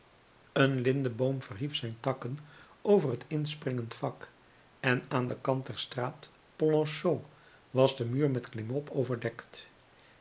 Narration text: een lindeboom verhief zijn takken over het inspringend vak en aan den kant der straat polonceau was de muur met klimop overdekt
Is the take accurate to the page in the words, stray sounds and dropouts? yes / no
yes